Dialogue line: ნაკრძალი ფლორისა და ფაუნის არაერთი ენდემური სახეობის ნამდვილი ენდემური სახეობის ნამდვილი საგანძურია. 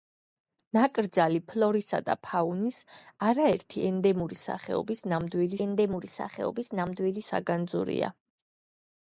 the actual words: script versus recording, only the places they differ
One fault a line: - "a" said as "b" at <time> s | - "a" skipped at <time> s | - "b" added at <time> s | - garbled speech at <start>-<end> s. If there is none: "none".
none